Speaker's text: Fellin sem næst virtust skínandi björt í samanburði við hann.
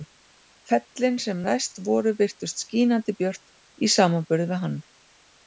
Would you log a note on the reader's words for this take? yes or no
yes